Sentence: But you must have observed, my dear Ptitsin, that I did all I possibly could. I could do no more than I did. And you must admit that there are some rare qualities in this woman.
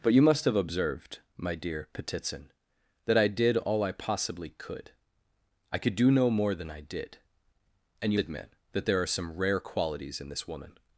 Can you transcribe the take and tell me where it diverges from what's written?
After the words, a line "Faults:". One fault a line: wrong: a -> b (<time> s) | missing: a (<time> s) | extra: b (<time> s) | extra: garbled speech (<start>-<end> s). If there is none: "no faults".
But you must have observed, my dear Ptitsin, that I did all I possibly could. I could do no more than I did. And you admit that there are some rare qualities in this woman.
Faults:
missing: must (8.2 s)